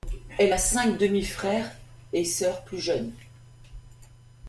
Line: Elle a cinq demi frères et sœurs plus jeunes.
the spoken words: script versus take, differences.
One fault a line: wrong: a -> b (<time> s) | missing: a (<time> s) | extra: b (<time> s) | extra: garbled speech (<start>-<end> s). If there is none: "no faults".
no faults